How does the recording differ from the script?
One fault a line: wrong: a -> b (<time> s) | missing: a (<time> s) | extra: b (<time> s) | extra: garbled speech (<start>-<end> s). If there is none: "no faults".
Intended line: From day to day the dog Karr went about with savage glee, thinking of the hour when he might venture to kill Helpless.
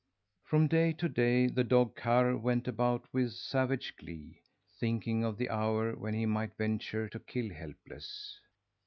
no faults